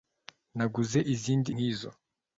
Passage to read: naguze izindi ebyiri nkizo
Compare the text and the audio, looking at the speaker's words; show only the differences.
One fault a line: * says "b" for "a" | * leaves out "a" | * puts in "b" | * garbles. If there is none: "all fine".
* leaves out "ebyiri"